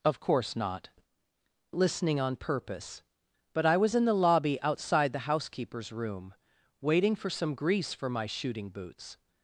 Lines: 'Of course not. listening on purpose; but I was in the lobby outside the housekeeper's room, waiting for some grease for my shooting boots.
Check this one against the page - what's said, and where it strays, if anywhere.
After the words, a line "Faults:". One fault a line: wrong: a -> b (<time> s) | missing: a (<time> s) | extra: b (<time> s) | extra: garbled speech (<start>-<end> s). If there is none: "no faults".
'Of course not. listening on purpose; but I was in the lobby outside the housekeeper's room, waiting for some grease for my shooting boots.
Faults:
no faults